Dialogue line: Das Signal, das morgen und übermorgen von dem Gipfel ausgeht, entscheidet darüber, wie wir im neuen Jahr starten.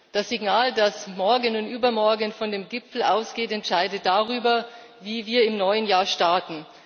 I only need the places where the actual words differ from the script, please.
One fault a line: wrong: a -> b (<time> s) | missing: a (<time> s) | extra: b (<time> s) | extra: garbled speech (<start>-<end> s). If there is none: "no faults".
no faults